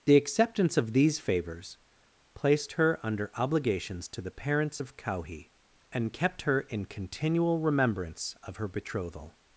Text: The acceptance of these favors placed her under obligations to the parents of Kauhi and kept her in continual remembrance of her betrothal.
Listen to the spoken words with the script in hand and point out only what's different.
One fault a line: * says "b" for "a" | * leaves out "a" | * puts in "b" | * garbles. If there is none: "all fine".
all fine